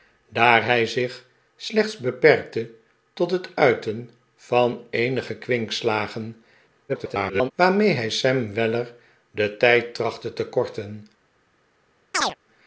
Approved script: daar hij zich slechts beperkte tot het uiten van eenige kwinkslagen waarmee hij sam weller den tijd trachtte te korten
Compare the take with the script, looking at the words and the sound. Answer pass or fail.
fail